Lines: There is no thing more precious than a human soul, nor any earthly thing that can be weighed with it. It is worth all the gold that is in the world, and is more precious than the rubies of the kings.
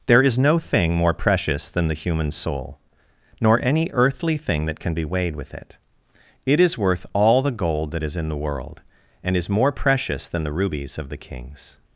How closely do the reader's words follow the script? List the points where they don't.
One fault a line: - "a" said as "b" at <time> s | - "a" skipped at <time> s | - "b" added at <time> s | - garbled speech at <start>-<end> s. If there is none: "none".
- "a" said as "the" at 1.9 s